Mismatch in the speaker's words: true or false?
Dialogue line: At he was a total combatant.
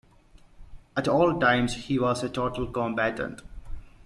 true